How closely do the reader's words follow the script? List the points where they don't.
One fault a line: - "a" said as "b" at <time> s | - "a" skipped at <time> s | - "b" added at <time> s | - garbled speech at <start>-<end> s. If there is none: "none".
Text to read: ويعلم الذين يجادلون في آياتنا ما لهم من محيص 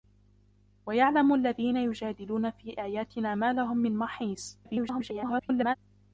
- garbled speech at 4.6-5.8 s